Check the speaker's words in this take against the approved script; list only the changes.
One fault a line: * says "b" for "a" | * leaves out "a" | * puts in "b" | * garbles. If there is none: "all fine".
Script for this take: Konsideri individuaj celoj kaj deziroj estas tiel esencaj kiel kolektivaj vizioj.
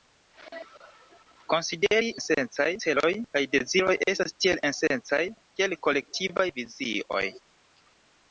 * says "esencaj" for "individuaj"